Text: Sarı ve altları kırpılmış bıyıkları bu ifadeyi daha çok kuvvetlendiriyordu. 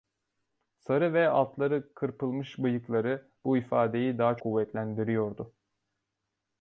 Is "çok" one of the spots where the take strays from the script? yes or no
yes